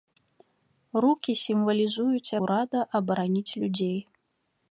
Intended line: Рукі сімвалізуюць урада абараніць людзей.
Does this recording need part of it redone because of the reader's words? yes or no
no